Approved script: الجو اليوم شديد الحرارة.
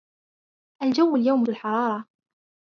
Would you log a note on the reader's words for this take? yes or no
yes